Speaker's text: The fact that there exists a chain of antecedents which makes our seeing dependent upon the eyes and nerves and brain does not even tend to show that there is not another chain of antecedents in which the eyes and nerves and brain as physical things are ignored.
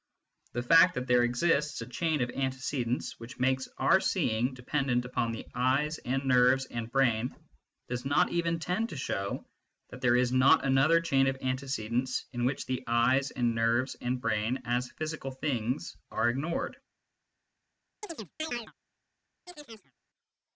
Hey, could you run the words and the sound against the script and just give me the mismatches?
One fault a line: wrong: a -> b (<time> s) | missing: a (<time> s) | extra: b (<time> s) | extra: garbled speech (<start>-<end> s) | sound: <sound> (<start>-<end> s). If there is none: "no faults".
sound: chirp (18.0-18.7 s)
sound: chirp (19.5-19.9 s)